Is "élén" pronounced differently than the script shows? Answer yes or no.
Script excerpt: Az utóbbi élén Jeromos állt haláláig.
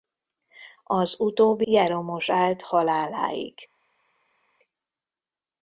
yes